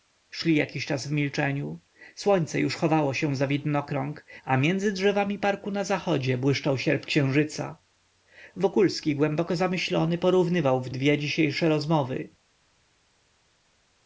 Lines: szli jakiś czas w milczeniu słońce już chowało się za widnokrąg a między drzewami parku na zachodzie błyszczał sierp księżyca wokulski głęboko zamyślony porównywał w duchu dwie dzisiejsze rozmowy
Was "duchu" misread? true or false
true